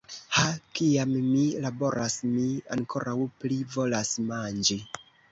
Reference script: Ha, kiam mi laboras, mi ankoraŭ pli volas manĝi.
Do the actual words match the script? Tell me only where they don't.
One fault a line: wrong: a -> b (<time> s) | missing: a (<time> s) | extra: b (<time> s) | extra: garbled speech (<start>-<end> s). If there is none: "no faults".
no faults